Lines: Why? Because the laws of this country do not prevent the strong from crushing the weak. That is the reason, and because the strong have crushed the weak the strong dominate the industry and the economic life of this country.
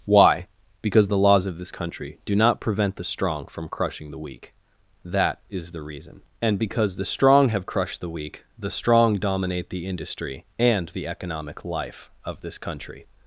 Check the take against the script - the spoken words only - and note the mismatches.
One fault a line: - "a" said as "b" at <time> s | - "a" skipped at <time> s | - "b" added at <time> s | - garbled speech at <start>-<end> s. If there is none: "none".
none